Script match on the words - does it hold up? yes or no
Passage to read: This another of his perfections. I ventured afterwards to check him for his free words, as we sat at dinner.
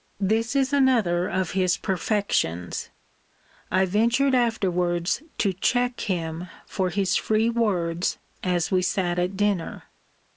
no